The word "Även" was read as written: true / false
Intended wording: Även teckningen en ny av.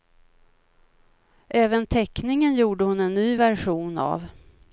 true